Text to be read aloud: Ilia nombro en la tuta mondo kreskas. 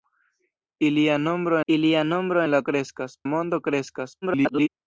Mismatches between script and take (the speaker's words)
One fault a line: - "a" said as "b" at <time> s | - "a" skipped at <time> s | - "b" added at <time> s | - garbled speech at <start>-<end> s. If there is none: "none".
- "ilia nombro" added at 1.7 s
- "tuta" said as "kreskas" at 2.6 s
- garbled speech at 4.2-4.7 s